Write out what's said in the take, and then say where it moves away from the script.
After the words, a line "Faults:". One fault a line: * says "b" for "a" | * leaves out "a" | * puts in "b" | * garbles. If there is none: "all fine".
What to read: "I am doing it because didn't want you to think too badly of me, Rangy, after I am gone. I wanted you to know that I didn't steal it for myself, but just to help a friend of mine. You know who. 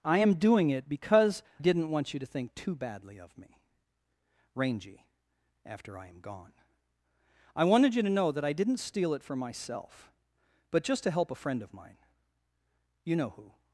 "I am doing it because didn't want you to think too badly of me, Rangy, after I am gone. I wanted you to know that I didn't steal it for myself, but just to help a friend of mine. You know who.
Faults:
all fine